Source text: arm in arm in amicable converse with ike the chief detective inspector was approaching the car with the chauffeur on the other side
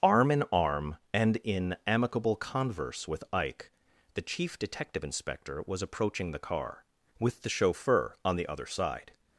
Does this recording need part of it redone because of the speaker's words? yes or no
yes